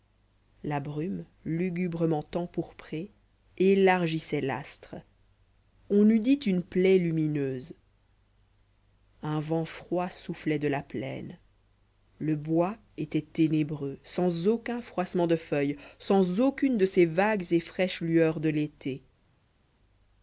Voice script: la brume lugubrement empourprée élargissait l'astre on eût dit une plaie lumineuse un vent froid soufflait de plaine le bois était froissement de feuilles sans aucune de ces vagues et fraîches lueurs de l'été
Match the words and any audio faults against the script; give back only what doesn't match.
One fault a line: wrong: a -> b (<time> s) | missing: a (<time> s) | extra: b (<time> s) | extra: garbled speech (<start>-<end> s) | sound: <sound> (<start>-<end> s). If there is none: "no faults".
extra: la (10.7 s)
extra: ténébreux sans aucun (13.2 s)